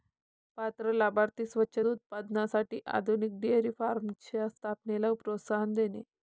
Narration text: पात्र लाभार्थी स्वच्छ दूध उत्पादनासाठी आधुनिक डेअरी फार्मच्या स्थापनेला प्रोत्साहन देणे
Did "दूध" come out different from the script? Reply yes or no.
yes